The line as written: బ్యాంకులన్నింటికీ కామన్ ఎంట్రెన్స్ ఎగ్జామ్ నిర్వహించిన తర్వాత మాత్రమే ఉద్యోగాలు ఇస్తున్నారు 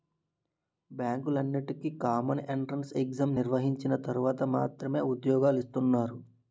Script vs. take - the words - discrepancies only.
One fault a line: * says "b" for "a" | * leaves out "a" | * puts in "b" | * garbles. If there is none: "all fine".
all fine